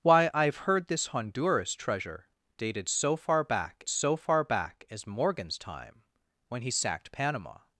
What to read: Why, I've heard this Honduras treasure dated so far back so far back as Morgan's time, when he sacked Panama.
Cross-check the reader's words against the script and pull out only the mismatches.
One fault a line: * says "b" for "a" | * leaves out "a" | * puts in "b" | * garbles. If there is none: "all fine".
all fine